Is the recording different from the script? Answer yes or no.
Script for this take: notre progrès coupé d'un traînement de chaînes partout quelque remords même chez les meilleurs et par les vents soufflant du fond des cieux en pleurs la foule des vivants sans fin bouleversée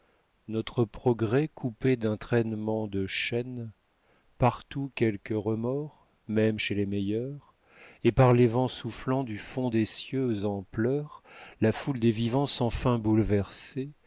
no